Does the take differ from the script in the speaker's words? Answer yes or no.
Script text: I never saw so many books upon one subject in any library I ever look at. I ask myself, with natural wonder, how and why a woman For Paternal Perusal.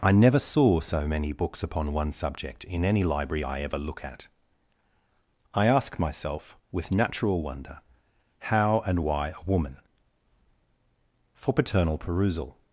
no